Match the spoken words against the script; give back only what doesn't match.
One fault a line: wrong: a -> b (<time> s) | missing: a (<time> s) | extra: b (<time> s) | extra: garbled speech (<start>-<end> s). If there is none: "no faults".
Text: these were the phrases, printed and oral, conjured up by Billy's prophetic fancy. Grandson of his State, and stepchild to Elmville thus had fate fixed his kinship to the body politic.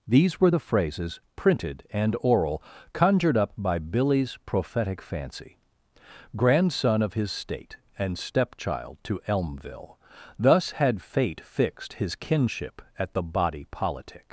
wrong: to -> at (13.0 s)